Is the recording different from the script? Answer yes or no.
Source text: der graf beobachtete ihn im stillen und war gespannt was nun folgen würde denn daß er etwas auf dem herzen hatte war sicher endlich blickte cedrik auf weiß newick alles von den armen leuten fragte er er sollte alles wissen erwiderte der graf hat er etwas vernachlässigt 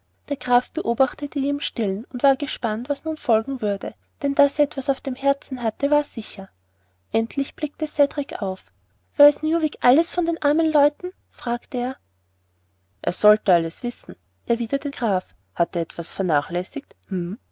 yes